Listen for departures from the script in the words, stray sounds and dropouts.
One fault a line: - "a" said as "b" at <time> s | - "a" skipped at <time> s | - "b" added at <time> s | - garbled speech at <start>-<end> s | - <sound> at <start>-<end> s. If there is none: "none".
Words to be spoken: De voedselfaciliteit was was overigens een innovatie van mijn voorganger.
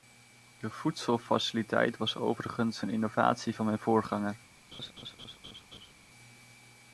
- "was" skipped at 2.1 s
- laugh at 4.7-5.9 s